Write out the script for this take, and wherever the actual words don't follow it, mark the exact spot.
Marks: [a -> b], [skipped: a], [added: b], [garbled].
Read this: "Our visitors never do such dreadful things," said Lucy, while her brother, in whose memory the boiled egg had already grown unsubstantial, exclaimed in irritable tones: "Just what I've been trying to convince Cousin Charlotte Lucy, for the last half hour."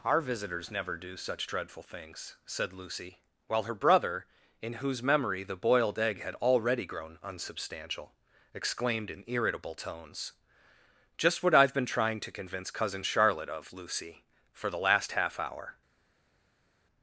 "Our visitors never do such dreadful things," said Lucy, while her brother, in whose memory the boiled egg had already grown unsubstantial, exclaimed in irritable tones: "Just what I've been trying to convince Cousin Charlotte [added: of] Lucy, for the last half hour."